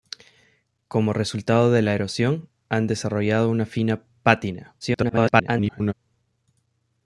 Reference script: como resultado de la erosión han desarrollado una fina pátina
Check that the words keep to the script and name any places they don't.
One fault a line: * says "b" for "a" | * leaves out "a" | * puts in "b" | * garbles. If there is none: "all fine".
* garbles